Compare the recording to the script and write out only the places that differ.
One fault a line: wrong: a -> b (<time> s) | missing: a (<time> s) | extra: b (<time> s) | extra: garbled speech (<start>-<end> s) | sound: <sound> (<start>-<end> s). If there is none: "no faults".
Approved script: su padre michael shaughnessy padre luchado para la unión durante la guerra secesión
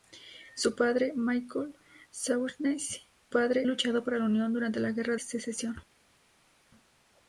no faults